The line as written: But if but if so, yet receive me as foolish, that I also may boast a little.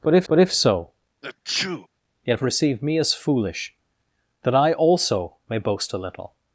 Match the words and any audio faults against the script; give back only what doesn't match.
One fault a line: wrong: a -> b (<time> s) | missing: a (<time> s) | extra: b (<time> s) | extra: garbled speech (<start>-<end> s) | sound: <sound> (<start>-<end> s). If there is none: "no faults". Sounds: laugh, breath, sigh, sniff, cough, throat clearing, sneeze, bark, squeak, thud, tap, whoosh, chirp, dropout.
sound: sneeze (1.2-1.9 s)